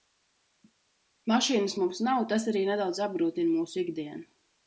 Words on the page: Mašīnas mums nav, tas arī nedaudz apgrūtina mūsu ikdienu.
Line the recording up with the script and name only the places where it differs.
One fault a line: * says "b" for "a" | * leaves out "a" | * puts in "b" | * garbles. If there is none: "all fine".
all fine